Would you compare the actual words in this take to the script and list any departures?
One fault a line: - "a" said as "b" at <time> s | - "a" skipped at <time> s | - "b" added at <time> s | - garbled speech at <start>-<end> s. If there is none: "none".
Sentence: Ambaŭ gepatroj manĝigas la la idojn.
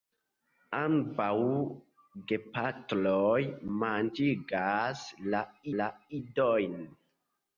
none